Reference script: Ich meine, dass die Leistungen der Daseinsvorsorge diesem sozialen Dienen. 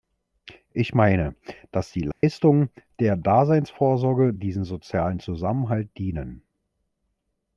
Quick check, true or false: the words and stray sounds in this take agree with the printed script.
false